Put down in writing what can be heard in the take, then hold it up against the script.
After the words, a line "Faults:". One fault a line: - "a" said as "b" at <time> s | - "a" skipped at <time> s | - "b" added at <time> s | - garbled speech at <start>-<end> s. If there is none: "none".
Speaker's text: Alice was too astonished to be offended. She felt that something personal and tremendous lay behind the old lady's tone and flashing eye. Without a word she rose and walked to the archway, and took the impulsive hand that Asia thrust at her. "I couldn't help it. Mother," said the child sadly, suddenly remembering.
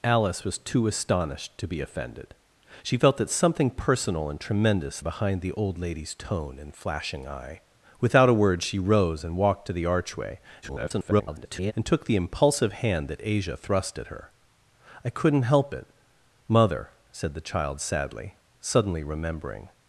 Alice was too astonished to be offended. She felt that something personal and tremendous behind the old lady's tone and flashing eye. Without a word she rose and walked to the archway, [garbled] and took the impulsive hand that Asia thrust at her. "I couldn't help it. Mother," said the child sadly, suddenly remembering.
Faults:
- "lay" skipped at 5.0 s
- garbled speech at 10.6-11.7 s